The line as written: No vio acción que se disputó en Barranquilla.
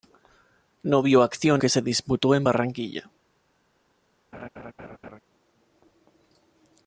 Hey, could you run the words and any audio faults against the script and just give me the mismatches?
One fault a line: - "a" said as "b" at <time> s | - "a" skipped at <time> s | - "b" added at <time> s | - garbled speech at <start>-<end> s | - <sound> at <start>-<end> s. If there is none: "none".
- laugh at 4.3-5.2 s